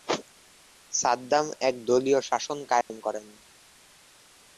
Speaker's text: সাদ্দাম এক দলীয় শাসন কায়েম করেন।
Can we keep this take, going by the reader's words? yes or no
yes